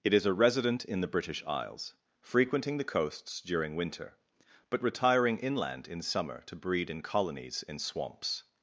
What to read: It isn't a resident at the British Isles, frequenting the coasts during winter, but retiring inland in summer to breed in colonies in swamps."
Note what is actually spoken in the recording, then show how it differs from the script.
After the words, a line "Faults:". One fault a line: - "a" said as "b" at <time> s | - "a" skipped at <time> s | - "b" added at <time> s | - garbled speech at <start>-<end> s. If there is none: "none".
It is a resident in the British Isles, frequenting the coasts during winter, but retiring inland in summer to breed in colonies in swamps."
Faults:
- "isn't" said as "is" at 0.1 s
- "at" said as "in" at 0.8 s